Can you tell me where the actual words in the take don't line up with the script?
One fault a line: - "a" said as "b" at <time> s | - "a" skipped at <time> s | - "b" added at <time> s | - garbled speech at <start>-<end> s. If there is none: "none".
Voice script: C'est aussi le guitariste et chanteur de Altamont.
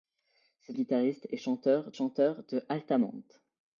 - "aussi le" skipped at 0.8 s
- "chanteur" added at 1.9 s